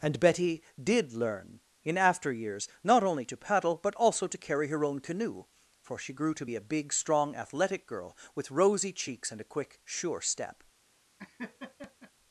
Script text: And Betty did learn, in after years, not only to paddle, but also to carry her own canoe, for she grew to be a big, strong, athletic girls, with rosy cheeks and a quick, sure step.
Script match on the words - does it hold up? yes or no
no